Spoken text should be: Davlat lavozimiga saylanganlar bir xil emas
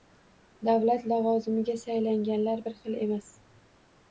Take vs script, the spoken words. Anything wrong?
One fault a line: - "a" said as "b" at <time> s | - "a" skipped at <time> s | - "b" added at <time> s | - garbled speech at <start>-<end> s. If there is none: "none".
none